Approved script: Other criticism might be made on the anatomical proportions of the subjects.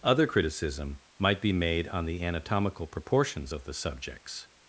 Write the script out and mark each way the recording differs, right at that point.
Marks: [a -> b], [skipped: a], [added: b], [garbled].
Other criticism might be made on the anatomical proportions of the subjects.